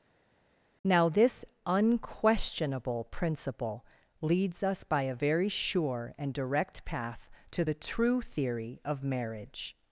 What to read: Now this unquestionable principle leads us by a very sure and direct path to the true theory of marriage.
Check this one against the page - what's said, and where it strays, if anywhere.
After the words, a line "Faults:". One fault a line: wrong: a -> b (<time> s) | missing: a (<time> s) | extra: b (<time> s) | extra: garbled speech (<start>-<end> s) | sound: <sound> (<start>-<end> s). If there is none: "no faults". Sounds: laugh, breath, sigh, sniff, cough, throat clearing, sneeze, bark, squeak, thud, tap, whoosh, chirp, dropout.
Now this unquestionable principle leads us by a very sure and direct path to the true theory of marriage.
Faults:
no faults